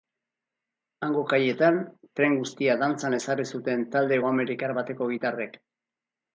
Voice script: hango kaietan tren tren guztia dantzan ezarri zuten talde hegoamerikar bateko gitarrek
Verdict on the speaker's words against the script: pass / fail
fail